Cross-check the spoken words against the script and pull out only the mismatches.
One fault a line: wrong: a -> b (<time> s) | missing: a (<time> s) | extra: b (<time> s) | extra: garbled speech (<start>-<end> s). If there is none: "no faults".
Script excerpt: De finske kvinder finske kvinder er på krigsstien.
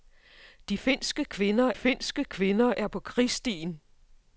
no faults